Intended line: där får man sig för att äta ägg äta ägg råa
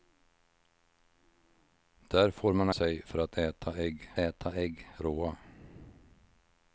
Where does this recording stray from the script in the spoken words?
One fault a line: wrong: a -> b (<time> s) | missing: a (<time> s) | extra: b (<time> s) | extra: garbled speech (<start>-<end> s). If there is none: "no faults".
no faults